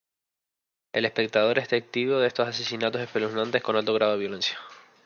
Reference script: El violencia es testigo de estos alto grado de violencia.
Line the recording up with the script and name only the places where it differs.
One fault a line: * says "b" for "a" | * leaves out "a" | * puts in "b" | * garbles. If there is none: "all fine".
* says "espectador" for "violencia"
* puts in "asesinatos espeluznantes con"